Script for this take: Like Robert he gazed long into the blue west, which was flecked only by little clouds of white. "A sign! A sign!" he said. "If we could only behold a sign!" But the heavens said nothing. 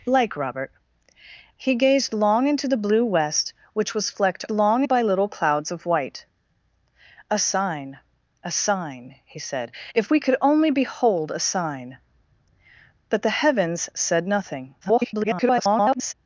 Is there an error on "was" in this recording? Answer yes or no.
no